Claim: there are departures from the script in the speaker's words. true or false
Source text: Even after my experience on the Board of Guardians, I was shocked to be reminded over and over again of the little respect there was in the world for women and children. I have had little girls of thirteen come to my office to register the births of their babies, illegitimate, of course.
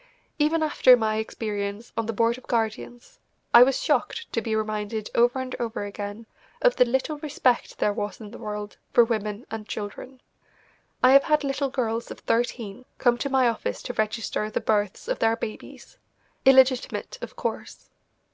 false